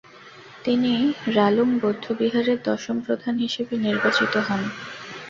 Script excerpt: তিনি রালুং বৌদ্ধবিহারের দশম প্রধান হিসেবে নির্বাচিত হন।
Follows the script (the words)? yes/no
yes